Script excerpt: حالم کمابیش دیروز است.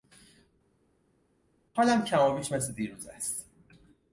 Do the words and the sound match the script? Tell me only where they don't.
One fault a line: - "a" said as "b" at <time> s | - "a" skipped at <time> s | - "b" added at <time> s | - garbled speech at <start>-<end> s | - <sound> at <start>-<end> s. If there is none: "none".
- "مثل" added at 2.5 s